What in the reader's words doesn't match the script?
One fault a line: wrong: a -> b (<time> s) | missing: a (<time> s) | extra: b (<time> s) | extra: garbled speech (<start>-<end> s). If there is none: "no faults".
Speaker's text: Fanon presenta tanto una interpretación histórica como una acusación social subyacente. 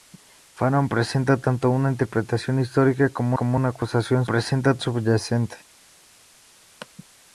extra: como (3.3 s)
wrong: social -> presenta (4.3 s)